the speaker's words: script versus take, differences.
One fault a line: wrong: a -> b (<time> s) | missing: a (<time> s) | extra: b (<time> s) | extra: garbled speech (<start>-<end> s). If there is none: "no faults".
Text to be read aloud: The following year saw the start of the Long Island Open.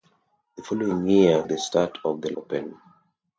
missing: saw (1.4 s)
missing: Long Island (2.3 s)